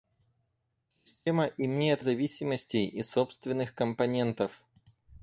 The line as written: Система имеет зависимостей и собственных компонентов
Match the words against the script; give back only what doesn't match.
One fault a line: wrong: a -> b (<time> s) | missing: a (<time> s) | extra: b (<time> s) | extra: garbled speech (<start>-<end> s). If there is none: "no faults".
no faults